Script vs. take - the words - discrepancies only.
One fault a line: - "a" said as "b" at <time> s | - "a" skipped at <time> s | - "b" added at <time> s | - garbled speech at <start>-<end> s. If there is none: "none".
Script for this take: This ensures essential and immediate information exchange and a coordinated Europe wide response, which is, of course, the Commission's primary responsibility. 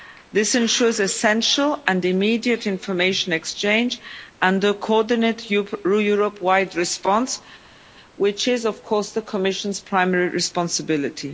none